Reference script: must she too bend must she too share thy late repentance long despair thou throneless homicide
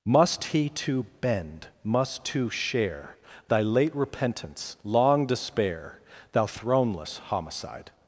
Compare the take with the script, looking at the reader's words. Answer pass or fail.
fail